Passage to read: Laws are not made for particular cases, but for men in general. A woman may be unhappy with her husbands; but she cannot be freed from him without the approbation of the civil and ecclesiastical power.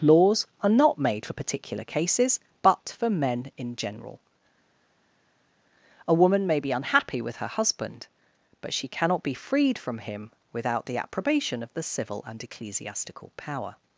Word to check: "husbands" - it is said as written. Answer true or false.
false